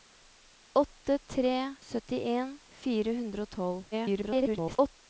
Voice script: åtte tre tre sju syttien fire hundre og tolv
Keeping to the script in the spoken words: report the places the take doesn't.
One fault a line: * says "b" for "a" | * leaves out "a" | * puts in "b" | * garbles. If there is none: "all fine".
* leaves out "tre sju"
* garbles